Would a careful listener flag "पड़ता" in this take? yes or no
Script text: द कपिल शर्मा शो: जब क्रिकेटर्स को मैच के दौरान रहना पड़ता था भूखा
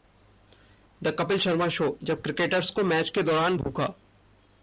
yes